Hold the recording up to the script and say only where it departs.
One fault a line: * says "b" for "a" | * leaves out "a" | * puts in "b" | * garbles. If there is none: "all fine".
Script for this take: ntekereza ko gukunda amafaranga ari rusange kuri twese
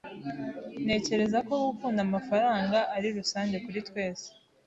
all fine